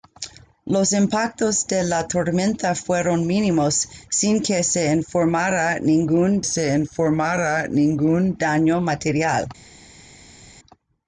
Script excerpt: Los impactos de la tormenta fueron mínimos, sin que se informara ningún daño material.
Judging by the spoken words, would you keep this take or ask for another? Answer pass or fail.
fail